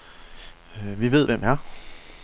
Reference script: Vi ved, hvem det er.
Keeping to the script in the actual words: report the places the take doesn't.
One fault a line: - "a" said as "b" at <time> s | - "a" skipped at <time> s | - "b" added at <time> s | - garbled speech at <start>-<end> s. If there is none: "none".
- "det" skipped at 1.4 s